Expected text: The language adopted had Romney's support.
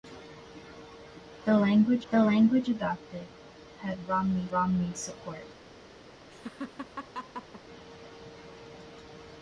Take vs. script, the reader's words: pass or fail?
fail